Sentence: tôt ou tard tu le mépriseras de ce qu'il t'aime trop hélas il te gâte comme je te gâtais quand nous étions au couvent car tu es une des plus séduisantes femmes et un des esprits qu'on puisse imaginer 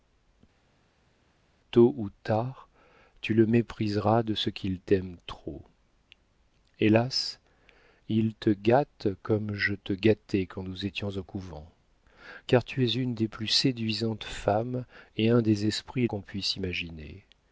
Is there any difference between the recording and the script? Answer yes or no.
no